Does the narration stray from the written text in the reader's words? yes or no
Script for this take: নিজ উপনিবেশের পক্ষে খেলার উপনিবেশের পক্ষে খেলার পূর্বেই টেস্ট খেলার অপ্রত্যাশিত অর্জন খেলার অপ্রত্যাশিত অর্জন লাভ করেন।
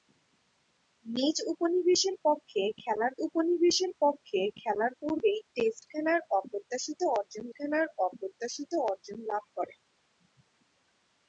no